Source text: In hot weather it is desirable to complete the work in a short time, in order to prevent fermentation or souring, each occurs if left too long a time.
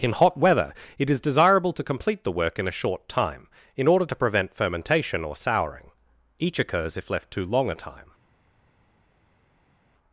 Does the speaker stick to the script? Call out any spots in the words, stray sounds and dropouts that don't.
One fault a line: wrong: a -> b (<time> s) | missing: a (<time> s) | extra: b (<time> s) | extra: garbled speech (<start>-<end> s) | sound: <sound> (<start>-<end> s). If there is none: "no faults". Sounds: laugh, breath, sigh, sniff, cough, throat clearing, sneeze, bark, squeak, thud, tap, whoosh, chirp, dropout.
no faults